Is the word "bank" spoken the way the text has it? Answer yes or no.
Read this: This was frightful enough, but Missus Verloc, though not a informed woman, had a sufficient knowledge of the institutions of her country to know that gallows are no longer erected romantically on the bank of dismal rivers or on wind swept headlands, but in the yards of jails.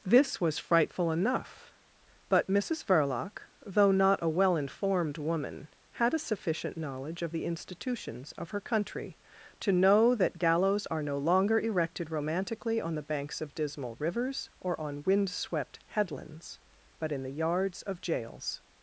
no